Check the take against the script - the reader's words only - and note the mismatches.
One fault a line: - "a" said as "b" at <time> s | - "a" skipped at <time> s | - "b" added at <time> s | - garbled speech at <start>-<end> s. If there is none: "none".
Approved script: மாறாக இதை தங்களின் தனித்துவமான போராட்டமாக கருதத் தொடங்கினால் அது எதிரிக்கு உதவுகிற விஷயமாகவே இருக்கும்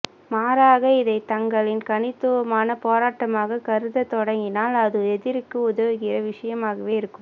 none